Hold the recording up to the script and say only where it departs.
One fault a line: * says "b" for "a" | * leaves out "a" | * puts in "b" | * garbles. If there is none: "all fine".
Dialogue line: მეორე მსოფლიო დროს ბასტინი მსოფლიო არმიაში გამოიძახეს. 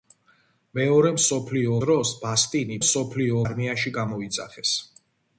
all fine